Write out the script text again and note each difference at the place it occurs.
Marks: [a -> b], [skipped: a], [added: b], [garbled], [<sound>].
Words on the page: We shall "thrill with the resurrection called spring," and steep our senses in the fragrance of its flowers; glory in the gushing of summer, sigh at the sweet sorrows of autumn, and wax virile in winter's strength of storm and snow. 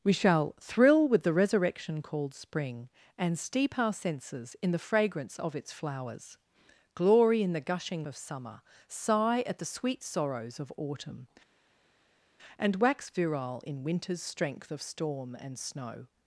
We shall "thrill with the resurrection called spring," and steep our senses in the fragrance of its flowers; glory in the gushing of summer, sigh at the sweet sorrows of autumn, and wax virile in winter's strength of storm and snow.